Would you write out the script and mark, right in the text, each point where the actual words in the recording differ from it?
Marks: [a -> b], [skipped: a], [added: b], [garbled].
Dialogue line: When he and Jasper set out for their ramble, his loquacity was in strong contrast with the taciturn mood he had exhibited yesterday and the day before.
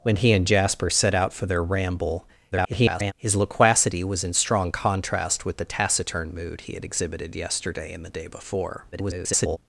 When he and Jasper set out for their ramble, [garbled] his loquacity was in strong contrast with the taciturn mood he had exhibited yesterday and the day before. [garbled]